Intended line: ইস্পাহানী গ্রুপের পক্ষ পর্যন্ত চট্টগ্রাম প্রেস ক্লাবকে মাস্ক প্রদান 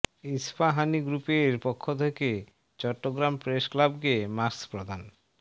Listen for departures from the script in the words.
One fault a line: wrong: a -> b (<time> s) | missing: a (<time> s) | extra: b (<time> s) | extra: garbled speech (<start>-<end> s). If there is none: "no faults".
wrong: পর্যন্ত -> থেকে (1.9 s)